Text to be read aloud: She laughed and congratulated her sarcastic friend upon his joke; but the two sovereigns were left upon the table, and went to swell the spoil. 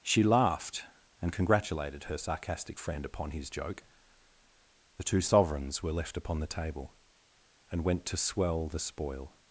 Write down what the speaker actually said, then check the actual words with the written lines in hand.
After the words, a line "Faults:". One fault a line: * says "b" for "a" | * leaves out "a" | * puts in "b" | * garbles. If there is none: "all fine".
She laughed and congratulated her sarcastic friend upon his joke; the two sovereigns were left upon the table, and went to swell the spoil.
Faults:
* leaves out "but"